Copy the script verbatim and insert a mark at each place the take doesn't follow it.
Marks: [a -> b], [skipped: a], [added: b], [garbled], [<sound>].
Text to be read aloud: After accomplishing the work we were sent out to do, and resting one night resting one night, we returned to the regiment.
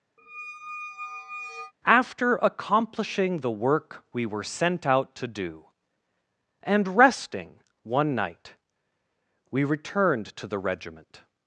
[squeak] After accomplishing the work we were sent out to do, and resting one night [skipped: resting one night,] we returned to the regiment.